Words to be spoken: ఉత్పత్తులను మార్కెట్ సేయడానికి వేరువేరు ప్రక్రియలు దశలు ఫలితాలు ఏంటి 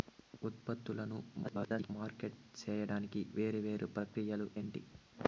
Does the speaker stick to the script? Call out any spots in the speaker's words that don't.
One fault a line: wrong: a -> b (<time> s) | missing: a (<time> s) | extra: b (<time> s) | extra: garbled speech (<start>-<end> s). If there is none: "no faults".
extra: garbled speech (1.4-1.9 s)
missing: దశలు ఫలితాలు (4.5 s)